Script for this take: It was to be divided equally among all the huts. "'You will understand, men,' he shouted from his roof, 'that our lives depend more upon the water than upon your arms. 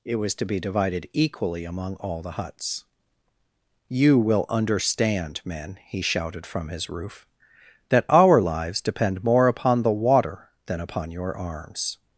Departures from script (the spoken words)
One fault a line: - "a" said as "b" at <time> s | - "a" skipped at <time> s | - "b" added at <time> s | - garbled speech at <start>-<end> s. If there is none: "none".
none